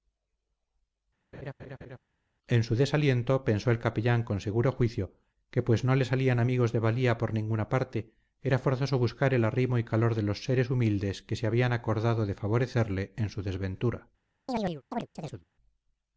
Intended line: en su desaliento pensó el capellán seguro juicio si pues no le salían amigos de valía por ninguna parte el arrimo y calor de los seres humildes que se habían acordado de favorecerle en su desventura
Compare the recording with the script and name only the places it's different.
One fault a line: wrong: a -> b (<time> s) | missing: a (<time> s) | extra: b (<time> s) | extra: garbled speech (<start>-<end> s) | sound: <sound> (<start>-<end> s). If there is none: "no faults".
sound: laugh (1.3-2.0 s)
extra: con (4.2 s)
wrong: si -> que (5.5 s)
extra: era forzoso buscar (8.4 s)
sound: chirp (14.5-15.4 s)